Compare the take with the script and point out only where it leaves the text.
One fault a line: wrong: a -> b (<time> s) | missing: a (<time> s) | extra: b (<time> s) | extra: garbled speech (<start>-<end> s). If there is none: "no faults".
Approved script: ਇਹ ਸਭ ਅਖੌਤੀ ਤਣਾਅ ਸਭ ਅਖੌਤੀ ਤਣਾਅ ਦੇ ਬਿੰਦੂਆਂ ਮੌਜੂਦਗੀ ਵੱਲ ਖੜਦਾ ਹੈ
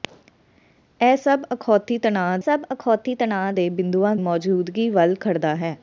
no faults